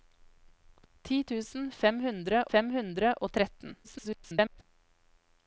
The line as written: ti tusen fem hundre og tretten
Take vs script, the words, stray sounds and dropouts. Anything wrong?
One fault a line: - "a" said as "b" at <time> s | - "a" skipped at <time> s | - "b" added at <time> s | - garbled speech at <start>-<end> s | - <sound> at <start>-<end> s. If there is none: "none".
- "fem hundre" added at 2.5 s
- garbled speech at 3.8-4.6 s